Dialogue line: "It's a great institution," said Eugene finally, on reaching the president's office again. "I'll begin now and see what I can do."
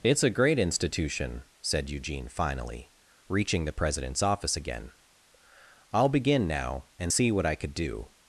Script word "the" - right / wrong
right